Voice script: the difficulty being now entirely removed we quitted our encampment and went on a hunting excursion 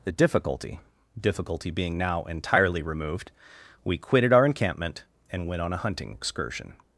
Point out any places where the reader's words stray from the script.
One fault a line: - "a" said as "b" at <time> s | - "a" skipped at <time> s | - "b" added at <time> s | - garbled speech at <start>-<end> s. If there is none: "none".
- "difficulty" added at 1.2 s